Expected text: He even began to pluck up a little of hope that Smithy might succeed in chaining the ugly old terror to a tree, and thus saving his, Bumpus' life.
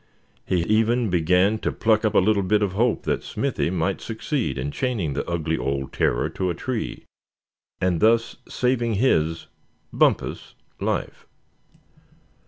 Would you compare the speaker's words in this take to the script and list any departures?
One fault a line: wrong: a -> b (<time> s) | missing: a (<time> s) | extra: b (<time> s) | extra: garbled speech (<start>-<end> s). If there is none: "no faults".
extra: bit (2.4 s)